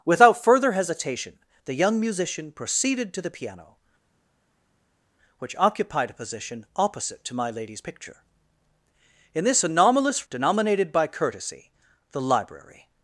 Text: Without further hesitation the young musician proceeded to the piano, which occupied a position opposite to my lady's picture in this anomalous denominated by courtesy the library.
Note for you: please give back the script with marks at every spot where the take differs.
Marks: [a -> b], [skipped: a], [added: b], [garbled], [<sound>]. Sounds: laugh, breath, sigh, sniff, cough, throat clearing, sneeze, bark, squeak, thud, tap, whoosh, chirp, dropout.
Without further hesitation the young musician proceeded to the piano, which occupied a position opposite to my lady's picture in this anomalous denominated by courtesy the library.